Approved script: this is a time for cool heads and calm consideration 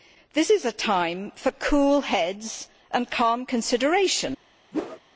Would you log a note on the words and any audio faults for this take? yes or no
yes